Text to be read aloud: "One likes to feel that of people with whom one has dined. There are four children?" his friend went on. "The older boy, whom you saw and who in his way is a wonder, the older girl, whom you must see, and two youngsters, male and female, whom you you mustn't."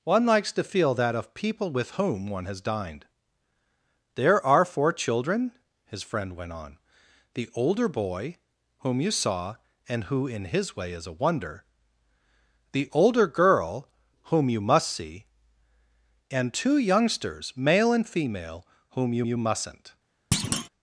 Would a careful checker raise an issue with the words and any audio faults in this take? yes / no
yes